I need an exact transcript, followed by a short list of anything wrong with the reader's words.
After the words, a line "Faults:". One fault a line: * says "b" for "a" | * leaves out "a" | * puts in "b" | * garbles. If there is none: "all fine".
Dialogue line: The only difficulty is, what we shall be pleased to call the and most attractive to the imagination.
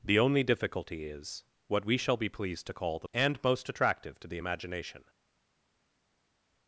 The only difficulty is, what we shall be pleased to call the and most attractive to the imagination.
Faults:
all fine